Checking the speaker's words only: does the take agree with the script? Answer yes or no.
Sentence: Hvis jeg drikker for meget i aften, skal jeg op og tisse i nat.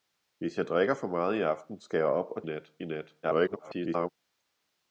no